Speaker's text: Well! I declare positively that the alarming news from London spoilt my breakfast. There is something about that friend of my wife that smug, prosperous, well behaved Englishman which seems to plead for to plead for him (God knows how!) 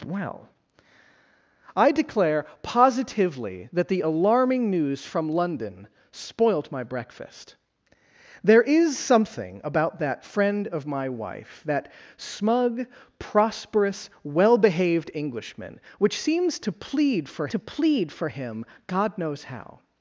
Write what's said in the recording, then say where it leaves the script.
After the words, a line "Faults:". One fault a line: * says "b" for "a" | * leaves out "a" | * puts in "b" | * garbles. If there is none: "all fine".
Well! I declare positively that the alarming news from London spoilt my breakfast. There is something about that friend of my wife that smug, prosperous, well behaved Englishman which seems to plead for to plead for him (God knows how!)
Faults:
all fine